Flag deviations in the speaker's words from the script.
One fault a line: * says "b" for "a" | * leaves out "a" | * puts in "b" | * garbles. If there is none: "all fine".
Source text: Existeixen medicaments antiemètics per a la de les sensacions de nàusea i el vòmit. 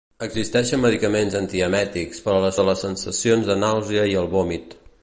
all fine